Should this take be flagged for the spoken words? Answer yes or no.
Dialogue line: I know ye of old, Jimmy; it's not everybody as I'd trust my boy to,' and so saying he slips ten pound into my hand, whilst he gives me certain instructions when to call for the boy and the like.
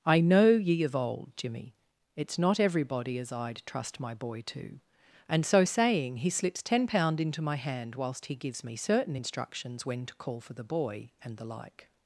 no